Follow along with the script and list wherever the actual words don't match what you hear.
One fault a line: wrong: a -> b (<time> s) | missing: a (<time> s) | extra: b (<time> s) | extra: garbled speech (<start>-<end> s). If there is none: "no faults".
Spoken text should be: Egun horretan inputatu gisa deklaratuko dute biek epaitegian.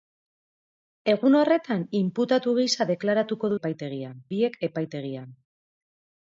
wrong: dute -> epaitegian (3.6 s)